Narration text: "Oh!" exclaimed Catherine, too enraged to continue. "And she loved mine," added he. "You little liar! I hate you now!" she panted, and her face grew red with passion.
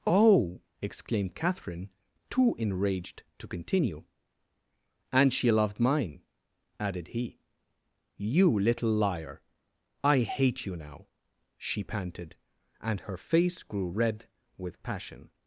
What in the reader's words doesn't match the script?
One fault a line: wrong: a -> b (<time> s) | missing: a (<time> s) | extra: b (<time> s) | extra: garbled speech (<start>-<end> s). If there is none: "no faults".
no faults